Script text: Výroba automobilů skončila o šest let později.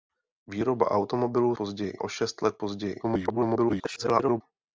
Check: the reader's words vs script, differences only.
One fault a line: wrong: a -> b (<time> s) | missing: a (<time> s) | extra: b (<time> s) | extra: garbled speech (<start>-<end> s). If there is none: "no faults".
wrong: skončila -> později (1.5 s)
extra: garbled speech (3.0-4.4 s)